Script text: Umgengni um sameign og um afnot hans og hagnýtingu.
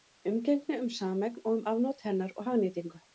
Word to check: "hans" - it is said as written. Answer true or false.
false